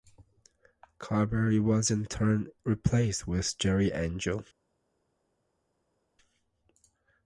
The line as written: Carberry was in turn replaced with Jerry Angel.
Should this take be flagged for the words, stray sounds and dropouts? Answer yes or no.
no